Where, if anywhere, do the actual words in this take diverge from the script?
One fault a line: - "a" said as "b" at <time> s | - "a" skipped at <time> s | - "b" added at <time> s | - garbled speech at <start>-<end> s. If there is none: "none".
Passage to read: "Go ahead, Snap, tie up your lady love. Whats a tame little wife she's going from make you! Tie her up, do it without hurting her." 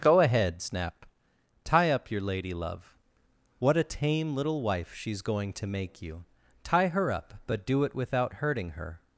- "Whats" said as "What" at 3.6 s
- "from" said as "to" at 5.5 s
- "but" added at 7.5 s